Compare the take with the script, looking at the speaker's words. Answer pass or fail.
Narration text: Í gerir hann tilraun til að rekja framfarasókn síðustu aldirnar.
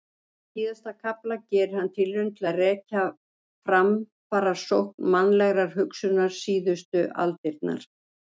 fail